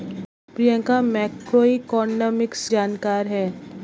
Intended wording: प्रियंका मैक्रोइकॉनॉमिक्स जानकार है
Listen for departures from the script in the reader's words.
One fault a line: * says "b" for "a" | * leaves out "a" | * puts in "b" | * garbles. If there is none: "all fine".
all fine